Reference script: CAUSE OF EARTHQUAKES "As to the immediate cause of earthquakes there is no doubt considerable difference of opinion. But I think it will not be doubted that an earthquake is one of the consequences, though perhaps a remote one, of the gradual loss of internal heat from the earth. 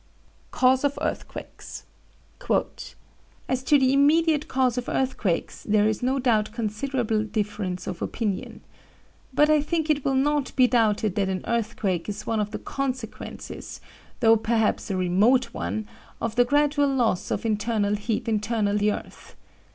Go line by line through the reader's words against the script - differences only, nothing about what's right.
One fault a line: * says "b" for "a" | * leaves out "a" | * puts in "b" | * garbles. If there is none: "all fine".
* says "internal" for "from"